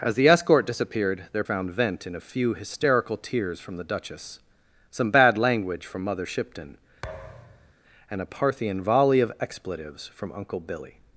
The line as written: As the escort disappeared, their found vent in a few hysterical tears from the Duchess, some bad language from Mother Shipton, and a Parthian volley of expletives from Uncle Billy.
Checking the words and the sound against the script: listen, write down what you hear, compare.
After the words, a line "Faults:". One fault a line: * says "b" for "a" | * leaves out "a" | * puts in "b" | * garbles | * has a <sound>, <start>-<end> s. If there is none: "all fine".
As the escort disappeared, their found vent in a few hysterical tears from the Duchess, some bad language from Mother Shipton, and a Parthian volley of expletives from Uncle Billy.
Faults:
* has a thud, 7.0-7.7 s